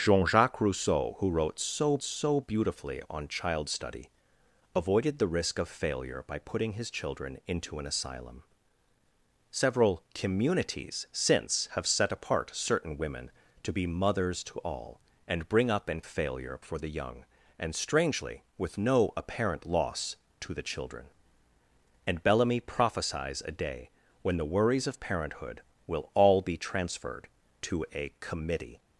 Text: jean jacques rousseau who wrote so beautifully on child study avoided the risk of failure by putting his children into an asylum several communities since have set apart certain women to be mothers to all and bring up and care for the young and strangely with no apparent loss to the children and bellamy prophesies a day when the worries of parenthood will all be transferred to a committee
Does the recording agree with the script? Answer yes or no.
no